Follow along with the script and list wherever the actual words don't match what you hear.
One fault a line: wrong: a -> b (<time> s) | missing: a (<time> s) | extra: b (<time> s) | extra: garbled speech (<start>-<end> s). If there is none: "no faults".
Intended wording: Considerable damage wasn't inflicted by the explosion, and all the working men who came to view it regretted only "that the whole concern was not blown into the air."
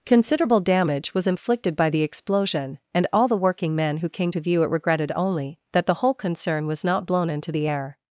wrong: wasn't -> was (1.1 s)